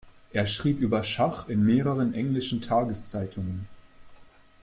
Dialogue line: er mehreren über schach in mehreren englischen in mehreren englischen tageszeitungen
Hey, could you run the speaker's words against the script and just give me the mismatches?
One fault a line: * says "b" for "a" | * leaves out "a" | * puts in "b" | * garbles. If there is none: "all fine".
* says "schrieb" for "mehreren"
* leaves out "in mehreren englischen"